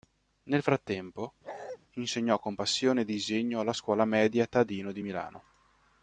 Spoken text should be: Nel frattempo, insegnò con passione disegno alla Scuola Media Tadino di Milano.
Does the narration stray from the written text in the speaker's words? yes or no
no